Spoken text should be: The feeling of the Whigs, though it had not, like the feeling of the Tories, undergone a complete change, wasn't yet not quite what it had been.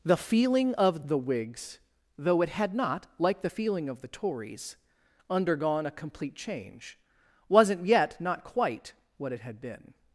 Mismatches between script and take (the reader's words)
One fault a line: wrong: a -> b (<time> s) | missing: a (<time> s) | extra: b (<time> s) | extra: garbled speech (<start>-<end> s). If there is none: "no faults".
no faults